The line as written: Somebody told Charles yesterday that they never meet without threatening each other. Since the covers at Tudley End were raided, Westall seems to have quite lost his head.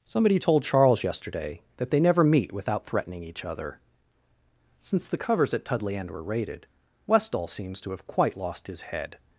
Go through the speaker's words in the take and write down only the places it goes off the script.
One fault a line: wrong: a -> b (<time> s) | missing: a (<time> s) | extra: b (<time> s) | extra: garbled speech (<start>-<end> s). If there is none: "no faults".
no faults